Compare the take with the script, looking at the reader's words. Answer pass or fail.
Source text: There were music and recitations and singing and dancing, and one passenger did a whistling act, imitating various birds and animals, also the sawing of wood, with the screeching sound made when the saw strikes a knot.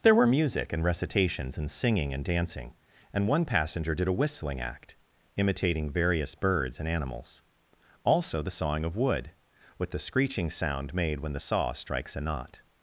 pass